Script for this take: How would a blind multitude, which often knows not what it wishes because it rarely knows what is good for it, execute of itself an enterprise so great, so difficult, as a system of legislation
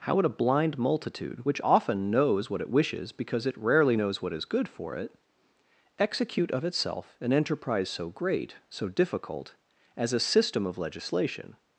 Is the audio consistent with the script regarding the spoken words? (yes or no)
no